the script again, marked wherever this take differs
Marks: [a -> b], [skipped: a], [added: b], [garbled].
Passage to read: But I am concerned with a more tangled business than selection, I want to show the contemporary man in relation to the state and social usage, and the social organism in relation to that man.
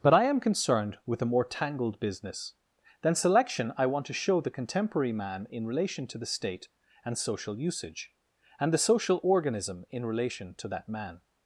But I am concerned with a more tangled business than selection, I want to show the contemporary man in relation to the state and social usage, and the social organism in relation to that man.